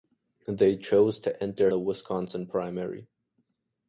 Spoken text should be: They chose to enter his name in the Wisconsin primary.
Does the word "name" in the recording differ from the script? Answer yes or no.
yes